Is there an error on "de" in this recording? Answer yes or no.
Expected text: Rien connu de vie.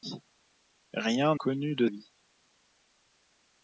no